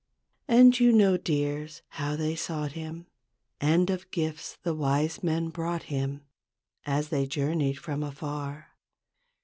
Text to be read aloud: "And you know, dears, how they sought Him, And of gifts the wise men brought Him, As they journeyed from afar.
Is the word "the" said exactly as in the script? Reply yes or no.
yes